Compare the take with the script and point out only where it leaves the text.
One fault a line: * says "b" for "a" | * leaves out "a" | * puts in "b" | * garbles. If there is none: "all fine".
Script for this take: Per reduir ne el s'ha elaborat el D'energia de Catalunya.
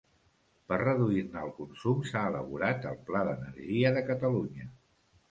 * puts in "consum"
* puts in "Pla"